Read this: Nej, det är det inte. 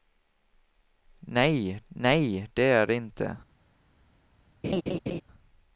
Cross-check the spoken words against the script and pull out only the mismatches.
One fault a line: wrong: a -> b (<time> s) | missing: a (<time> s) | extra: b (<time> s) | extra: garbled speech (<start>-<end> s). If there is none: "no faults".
extra: nej (1.9 s)